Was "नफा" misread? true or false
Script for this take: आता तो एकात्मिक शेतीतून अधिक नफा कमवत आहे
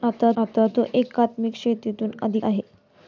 true